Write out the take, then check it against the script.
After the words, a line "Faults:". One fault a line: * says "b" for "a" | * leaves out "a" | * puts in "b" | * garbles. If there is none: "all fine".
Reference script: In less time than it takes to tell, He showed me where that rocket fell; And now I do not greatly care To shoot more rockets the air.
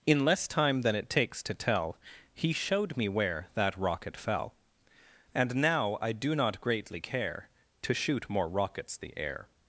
In less time than it takes to tell, He showed me where that rocket fell; And now I do not greatly care To shoot more rockets the air.
Faults:
all fine